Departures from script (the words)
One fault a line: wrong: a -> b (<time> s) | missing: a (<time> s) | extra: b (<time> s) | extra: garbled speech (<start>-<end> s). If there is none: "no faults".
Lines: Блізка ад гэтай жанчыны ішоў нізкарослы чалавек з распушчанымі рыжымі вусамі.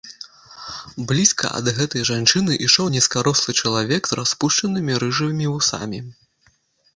no faults